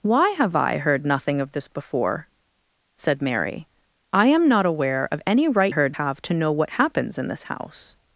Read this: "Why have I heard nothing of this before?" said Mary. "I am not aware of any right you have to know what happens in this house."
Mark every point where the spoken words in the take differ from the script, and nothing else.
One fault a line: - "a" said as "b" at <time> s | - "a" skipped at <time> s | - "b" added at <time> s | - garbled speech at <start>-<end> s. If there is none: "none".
- "you" said as "heard" at 5.7 s